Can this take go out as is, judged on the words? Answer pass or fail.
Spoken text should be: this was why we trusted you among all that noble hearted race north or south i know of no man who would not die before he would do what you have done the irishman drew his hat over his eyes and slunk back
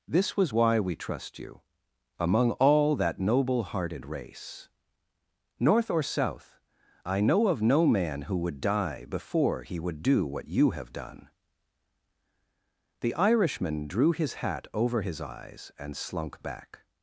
fail